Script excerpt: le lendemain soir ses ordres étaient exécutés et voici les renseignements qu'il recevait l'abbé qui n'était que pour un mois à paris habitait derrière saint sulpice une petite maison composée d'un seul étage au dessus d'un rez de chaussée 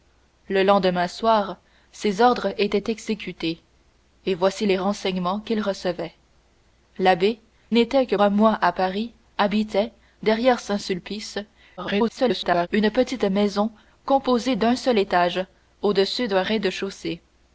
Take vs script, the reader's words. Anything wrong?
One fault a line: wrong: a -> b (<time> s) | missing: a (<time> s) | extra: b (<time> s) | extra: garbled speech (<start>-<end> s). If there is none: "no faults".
missing: qui (7.4 s)
missing: pour (8.2 s)
extra: garbled speech (11.8-12.7 s)